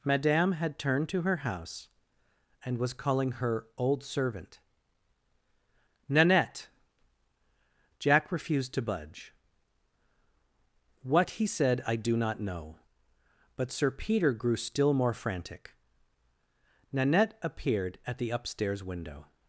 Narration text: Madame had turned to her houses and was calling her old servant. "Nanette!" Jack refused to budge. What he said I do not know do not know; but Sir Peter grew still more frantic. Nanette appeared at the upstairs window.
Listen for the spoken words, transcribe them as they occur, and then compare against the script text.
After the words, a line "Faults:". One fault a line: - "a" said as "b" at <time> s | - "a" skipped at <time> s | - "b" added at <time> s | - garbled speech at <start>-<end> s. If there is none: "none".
Madame had turned to her house and was calling her old servant. "Nanette!" Jack refused to budge. What he said I do not know; but Sir Peter grew still more frantic. Nanette appeared at the upstairs window.
Faults:
- "houses" said as "house" at 1.4 s
- "do not know" skipped at 12.8 s